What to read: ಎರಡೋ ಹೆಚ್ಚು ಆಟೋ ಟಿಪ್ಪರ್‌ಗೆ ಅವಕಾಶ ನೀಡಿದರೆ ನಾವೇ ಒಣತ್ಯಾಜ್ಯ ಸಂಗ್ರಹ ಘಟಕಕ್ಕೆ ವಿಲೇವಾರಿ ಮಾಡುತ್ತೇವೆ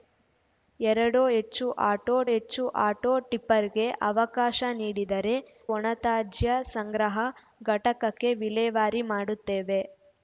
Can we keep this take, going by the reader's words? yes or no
no